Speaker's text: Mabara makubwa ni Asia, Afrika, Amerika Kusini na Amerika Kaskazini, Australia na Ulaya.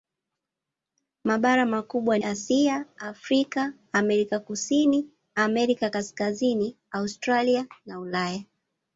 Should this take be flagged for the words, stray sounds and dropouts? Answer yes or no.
yes